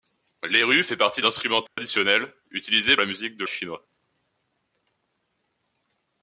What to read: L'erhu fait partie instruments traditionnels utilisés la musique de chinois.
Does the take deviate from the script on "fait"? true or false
false